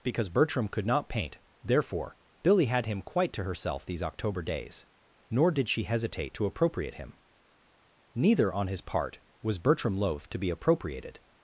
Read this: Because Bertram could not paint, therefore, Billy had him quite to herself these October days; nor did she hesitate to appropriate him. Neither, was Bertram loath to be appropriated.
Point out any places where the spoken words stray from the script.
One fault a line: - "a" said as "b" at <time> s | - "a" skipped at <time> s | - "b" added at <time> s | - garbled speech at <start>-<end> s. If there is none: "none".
- "on his part" added at 8.5 s